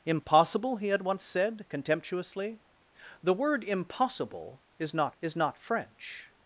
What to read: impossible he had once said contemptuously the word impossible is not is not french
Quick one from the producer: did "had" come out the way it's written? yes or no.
yes